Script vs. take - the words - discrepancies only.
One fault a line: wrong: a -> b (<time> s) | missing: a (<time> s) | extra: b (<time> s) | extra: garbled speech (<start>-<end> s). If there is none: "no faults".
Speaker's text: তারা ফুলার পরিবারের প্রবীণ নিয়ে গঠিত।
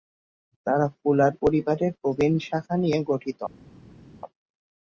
extra: শাখা (2.5 s)